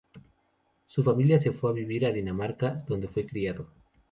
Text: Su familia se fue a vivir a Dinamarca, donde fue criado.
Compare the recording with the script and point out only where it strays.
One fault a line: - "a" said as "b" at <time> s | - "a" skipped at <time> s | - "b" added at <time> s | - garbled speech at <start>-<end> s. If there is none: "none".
none